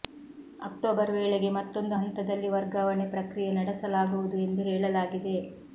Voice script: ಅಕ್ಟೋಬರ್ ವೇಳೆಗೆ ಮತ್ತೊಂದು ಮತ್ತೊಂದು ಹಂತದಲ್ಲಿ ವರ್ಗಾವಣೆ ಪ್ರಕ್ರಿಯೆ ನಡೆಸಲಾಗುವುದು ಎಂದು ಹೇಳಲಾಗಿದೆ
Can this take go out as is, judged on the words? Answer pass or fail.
fail